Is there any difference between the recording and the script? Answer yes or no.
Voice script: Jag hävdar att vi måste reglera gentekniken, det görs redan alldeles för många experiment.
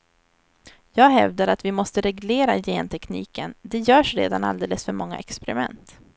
no